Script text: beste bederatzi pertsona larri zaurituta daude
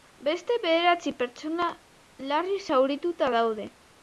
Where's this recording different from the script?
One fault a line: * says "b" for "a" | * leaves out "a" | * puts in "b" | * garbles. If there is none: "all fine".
all fine